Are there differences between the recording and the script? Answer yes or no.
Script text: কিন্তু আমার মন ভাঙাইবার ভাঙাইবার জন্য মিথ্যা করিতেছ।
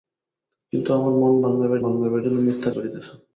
no